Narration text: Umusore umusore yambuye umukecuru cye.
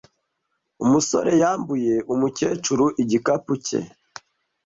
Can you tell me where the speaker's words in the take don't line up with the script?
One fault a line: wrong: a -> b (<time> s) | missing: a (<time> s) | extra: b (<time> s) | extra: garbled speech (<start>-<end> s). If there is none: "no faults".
missing: umusore (1.3 s)
extra: igikapu (3.0 s)